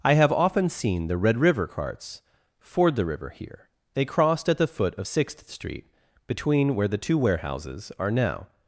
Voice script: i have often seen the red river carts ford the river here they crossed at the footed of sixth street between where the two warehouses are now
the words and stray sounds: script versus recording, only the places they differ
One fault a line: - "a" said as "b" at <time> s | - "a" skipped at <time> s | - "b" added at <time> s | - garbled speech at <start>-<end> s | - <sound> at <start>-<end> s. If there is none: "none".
- "footed" said as "foot" at 4.7 s